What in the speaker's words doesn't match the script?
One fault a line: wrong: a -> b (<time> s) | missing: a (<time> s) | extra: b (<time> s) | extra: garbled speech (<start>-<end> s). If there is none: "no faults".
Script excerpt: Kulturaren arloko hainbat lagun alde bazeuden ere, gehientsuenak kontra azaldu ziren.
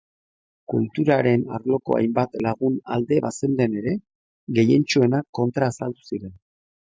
no faults